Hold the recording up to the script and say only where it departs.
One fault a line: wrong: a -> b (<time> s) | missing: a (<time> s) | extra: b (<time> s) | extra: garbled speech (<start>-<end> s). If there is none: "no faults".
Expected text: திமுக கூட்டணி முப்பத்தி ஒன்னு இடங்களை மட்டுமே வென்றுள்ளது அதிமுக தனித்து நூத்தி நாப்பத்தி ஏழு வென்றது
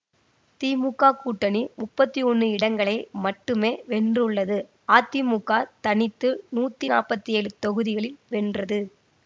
extra: தொகுதிகளில் (7.6 s)